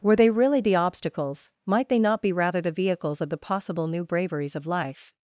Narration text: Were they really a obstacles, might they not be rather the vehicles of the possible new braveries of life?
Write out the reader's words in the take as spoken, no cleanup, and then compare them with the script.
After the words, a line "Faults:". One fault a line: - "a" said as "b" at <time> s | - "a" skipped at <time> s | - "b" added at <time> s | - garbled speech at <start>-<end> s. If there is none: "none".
Were they really the obstacles, might they not be rather the vehicles of the possible new braveries of life?
Faults:
- "a" said as "the" at 0.6 s